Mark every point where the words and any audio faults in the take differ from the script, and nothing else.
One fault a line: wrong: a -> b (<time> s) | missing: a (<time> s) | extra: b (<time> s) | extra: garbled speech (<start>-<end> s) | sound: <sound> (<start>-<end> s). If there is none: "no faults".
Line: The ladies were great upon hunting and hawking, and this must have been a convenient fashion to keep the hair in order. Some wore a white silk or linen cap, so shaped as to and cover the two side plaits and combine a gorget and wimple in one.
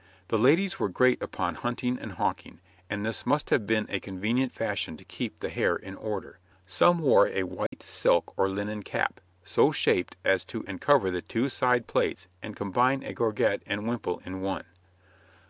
sound: dropout (7.7-7.7 s)